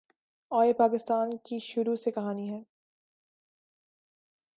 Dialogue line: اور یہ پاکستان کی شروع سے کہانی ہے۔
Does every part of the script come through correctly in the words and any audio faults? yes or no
yes